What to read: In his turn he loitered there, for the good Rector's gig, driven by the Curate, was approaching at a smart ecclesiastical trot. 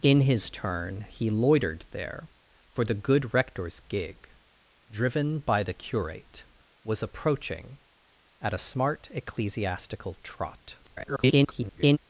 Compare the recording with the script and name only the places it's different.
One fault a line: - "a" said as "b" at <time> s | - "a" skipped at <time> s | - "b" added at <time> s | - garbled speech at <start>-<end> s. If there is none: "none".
- garbled speech at 10.8-12.0 s